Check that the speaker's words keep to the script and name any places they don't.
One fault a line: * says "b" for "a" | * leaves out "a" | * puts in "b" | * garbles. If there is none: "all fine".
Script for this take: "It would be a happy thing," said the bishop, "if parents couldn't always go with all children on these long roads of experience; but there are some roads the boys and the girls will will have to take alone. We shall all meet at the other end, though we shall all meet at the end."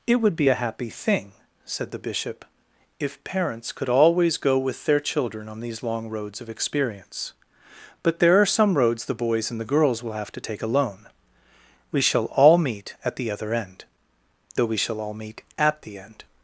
* says "could" for "couldn't"
* says "their" for "all"
* leaves out "will"